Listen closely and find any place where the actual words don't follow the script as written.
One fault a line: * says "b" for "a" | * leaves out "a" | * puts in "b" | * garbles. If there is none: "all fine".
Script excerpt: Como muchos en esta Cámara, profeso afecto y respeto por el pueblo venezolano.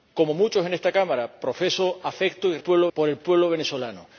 * says "pueblo" for "respeto"